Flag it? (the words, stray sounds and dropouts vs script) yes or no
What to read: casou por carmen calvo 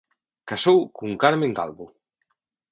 yes